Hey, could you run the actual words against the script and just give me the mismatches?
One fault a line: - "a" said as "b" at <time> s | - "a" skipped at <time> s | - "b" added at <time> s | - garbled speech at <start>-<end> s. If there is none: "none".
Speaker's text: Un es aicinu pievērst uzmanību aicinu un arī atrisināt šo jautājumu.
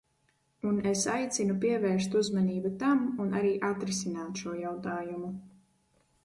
- "aicinu" said as "tam" at 2.8 s